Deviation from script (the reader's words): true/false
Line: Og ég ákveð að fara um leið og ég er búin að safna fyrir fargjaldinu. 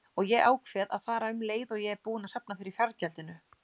false